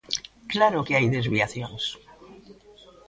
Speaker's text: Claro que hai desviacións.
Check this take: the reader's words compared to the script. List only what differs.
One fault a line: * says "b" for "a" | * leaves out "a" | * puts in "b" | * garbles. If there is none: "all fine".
all fine